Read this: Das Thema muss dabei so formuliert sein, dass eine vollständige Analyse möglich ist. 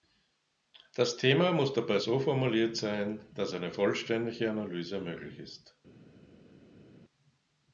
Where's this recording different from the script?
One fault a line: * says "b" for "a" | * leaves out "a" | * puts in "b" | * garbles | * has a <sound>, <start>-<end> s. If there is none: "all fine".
all fine